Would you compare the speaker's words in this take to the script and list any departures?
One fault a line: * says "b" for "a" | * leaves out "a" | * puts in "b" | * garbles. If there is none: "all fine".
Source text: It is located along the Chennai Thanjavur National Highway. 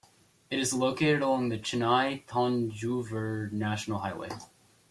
all fine